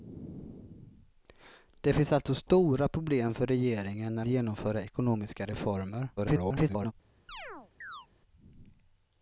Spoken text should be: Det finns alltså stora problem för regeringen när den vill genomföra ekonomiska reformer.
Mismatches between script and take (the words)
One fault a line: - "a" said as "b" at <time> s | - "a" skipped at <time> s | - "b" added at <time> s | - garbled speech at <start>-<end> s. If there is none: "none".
- "den vill" skipped at 4.2 s
- garbled speech at 6.2-6.9 s